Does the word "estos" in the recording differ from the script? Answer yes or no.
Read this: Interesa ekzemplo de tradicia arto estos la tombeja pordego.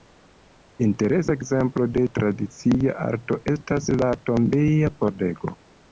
yes